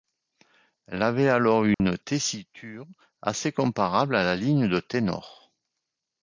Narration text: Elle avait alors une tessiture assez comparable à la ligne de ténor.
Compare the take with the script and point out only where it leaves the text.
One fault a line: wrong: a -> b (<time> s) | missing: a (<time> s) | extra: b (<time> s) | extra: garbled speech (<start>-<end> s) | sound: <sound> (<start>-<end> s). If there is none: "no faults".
sound: dropout (1.7-1.8 s)